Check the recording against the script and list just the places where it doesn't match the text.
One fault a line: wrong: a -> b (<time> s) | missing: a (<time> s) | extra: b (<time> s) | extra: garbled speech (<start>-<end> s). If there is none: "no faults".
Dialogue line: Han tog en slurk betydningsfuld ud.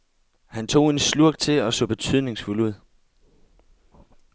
extra: til og så (1.4 s)